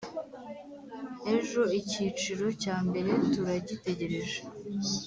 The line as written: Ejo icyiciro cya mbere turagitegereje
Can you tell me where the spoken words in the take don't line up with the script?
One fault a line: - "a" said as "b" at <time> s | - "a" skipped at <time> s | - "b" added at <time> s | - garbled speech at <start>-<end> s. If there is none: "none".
none